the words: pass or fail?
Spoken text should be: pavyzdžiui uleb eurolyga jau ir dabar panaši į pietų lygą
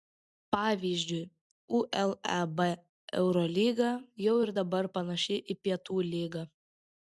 pass